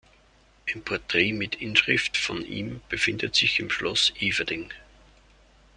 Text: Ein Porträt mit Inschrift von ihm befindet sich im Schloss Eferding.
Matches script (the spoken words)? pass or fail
pass